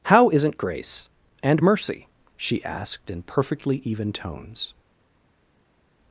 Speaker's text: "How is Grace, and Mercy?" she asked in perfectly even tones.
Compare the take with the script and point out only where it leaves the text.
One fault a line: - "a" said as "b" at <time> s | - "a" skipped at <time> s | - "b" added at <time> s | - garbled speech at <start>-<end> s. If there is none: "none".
- "is" said as "isn't" at 0.3 s